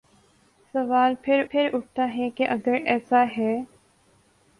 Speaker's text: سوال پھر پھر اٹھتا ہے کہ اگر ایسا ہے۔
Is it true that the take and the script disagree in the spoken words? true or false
false